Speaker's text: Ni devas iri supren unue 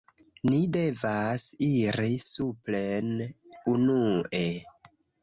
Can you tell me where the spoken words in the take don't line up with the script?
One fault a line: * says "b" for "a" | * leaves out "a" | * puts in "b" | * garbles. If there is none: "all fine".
all fine